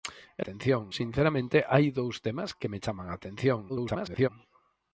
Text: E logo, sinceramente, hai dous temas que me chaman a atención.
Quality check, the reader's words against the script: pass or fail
fail